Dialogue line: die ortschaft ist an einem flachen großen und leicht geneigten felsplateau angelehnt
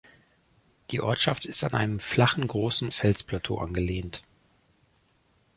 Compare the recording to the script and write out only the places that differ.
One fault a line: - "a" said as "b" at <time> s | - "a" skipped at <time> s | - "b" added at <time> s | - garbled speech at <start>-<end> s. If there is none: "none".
- "und leicht geneigten" skipped at 2.9 s